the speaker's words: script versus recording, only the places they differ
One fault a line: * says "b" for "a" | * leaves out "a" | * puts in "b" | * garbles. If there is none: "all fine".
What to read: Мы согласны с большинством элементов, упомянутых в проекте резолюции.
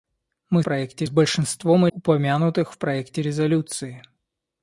* says "проекте" for "согласны"
* leaves out "элементов"